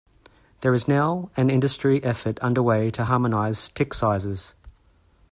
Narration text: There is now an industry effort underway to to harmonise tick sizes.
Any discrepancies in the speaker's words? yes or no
yes